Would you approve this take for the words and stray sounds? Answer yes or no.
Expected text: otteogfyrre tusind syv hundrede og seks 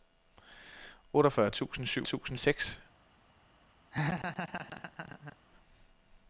no